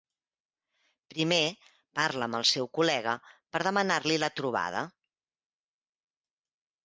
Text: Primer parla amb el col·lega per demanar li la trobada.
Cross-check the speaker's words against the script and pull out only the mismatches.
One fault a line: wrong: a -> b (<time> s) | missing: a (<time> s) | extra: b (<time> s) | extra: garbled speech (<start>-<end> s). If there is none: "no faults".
extra: seu (2.5 s)